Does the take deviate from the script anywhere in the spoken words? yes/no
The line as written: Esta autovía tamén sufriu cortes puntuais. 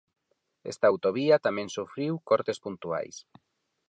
no